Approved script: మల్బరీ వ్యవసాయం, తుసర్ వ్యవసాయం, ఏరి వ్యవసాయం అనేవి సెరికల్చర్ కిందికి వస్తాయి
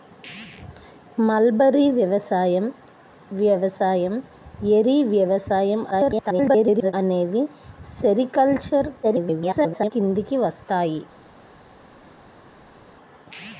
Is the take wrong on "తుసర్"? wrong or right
wrong